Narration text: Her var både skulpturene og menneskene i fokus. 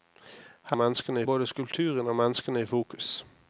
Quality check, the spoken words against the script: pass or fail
fail